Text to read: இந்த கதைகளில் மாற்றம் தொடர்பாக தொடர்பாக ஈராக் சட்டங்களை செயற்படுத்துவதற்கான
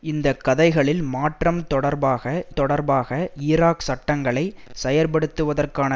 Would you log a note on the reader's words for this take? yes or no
no